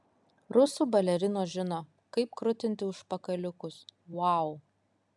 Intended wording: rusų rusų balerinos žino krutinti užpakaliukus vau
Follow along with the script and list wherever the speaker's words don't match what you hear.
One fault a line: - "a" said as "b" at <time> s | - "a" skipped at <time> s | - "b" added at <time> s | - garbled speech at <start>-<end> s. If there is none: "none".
- "rusų" skipped at 0.9 s
- "kaip" added at 2.2 s